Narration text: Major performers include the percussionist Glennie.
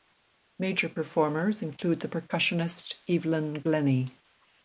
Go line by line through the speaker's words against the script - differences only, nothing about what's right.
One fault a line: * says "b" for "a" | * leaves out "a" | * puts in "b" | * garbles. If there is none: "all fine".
* puts in "Evelyn"